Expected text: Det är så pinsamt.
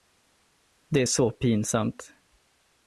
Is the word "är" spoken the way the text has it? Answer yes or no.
yes